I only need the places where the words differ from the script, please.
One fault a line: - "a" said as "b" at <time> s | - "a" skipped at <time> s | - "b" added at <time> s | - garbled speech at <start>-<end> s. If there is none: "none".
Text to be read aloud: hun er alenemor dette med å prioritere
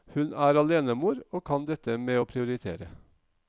- "og kan" added at 1.3 s